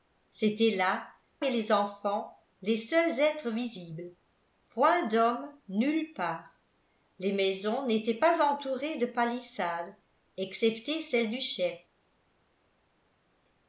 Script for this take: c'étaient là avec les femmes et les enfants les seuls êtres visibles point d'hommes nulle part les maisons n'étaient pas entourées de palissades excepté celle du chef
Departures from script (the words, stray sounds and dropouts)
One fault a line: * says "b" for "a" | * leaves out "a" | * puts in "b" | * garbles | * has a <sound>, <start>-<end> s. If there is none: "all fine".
* leaves out "avec les femmes"